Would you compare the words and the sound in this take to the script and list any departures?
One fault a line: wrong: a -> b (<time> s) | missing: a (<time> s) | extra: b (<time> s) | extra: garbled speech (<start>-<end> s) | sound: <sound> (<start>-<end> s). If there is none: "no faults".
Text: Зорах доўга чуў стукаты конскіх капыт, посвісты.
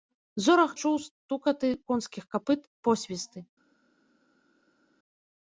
missing: доўга (0.7 s)